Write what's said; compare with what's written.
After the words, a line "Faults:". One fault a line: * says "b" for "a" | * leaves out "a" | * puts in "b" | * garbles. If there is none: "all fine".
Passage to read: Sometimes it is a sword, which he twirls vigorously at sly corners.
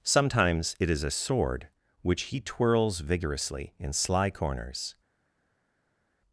Sometimes it is a sword, which he twirls vigorously in sly corners.
Faults:
* says "in" for "at"